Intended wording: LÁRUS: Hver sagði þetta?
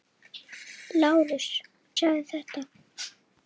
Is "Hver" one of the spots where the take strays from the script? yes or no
yes